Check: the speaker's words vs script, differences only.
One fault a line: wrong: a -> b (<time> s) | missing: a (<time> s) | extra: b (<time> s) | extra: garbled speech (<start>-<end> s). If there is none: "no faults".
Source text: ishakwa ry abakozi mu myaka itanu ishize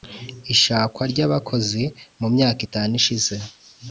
no faults